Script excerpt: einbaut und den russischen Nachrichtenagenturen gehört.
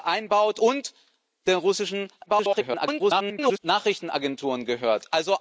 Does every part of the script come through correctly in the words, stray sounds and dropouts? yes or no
no